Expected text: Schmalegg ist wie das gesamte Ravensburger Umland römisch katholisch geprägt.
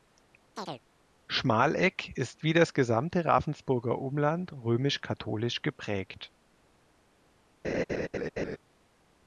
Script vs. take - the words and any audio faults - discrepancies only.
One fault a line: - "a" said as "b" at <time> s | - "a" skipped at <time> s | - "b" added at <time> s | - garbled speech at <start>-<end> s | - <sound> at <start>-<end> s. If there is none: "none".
- chirp at 0.6-0.8 s
- laugh at 7.6-8.6 s